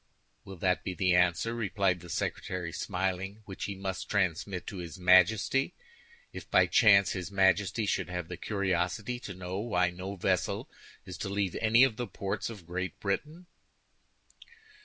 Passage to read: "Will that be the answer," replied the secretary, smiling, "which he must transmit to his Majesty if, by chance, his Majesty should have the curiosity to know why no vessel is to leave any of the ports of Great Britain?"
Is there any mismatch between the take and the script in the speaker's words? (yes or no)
no